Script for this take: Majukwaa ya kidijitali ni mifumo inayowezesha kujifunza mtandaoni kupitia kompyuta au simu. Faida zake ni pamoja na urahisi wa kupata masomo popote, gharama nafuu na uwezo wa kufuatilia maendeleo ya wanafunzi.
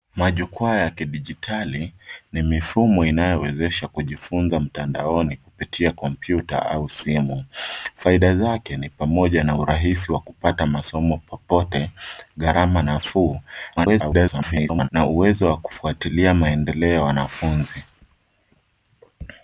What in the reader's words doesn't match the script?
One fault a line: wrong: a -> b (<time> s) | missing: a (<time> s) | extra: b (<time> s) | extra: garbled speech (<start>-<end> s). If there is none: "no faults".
extra: garbled speech (13.8-14.9 s)